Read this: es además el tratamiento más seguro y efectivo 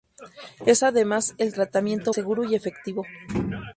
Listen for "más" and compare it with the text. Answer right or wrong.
wrong